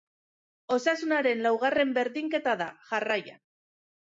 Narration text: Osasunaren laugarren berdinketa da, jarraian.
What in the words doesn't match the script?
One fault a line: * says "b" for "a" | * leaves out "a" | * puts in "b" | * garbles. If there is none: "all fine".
all fine